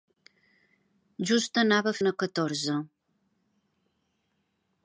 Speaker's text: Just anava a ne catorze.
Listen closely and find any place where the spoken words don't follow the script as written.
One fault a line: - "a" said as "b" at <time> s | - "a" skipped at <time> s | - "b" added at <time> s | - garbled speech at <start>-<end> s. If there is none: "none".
none